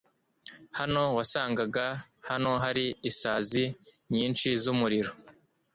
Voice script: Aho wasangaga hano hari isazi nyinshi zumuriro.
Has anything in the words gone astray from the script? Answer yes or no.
yes